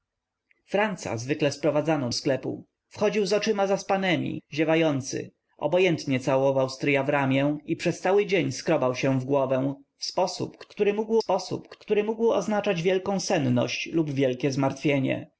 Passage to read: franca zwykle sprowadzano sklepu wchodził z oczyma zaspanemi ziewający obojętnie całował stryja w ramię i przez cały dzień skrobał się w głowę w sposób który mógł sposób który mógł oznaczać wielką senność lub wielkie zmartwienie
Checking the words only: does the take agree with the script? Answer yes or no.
yes